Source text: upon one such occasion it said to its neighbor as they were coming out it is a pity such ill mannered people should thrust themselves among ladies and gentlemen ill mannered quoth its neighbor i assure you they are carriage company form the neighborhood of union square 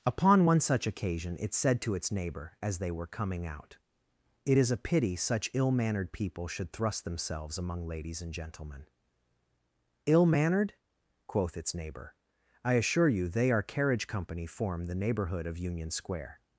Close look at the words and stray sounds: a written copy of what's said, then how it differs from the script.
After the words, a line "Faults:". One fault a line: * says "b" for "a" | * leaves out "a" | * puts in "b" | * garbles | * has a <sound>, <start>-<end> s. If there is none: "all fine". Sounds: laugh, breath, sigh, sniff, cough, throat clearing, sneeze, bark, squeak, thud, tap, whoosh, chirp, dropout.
upon one such occasion it said to its neighbor as they were coming out it is a pity such ill mannered people should thrust themselves among ladies and gentlemen ill mannered quoth its neighbor i assure you they are carriage company form the neighborhood of union square
Faults:
all fine